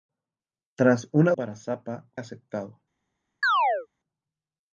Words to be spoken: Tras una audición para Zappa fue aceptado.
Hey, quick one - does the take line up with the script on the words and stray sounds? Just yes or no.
no